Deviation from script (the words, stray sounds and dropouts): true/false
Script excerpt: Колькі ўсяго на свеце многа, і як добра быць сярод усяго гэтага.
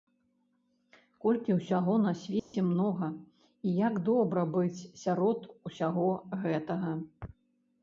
true